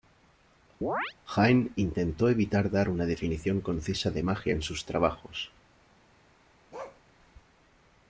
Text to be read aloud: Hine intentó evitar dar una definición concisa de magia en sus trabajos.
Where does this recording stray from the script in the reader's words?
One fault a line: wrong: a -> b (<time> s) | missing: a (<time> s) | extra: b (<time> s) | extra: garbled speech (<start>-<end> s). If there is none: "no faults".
no faults